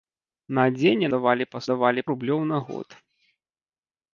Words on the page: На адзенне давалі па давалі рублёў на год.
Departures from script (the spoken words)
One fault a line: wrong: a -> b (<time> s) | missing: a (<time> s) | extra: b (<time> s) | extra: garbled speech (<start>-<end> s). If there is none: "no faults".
no faults